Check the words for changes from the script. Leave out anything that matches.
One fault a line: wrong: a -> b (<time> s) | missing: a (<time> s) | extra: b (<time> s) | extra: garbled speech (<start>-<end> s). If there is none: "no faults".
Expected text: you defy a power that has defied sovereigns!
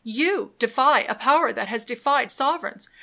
no faults